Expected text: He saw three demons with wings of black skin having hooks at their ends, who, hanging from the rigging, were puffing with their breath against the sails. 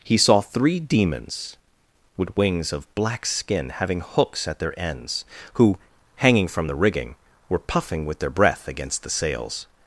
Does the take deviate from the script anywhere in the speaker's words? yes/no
no